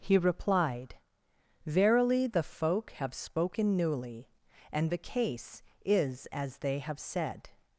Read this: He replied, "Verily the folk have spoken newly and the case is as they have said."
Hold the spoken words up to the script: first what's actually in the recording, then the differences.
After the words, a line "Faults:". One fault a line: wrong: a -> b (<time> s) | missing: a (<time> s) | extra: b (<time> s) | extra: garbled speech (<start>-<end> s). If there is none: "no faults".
He replied, "Verily the folk have spoken newly and the case is as they have said."
Faults:
no faults